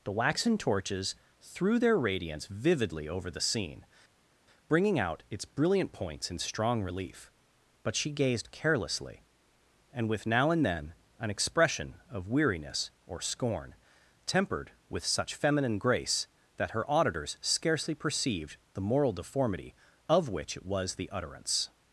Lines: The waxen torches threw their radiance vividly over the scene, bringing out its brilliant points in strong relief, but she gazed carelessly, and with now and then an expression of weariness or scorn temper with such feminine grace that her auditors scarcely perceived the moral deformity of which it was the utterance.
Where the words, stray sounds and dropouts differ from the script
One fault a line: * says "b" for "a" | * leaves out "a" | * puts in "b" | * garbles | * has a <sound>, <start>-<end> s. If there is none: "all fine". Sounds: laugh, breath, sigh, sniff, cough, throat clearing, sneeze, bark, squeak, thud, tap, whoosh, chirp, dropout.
* says "tempered" for "temper"